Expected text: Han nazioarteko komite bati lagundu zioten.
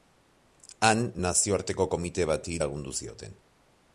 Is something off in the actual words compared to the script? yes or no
no